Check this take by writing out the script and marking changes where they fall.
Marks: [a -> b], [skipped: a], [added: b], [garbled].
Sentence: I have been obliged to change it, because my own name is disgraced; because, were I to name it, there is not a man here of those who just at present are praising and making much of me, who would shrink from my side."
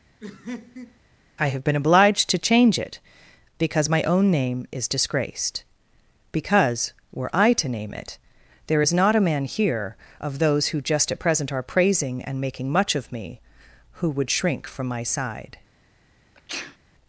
I have been obliged to change it, because my own name is disgraced; because, were I to name it, there is not a man here of those who just at present are praising and making much of me, who would shrink from my side."